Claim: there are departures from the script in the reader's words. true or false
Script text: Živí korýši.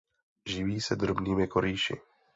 true